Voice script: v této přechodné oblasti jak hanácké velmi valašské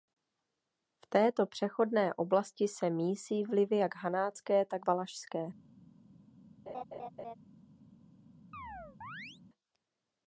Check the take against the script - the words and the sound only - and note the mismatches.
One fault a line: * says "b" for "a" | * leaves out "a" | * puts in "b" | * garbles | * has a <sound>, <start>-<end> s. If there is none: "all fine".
* puts in "se mísí vlivy"
* says "tak" for "velmi"
* has a laugh, 6.7-7.4 s
* has a chirp, 8.5-9.4 s